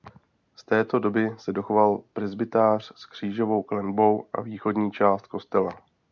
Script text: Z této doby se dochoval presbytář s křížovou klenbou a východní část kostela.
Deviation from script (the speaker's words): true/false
false